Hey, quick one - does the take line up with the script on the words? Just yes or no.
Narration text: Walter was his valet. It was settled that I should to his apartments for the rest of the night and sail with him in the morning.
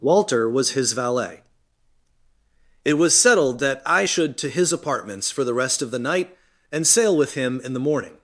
yes